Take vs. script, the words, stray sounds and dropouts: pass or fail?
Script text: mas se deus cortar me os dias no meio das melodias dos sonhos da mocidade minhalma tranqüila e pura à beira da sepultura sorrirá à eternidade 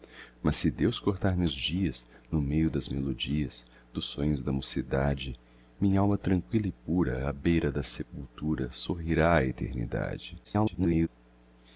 fail